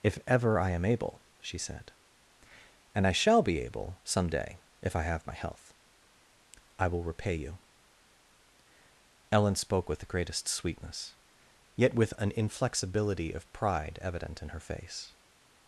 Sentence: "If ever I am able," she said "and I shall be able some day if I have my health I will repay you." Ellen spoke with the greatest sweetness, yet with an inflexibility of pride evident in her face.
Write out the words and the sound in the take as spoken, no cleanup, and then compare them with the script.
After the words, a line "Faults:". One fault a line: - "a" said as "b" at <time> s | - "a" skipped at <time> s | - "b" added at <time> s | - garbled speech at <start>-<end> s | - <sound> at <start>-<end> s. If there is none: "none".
"If ever I am able," she said "and I shall be able some day if I have my health I will repay you." Ellen spoke with the greatest sweetness, yet with an inflexibility of pride evident in her face.
Faults:
none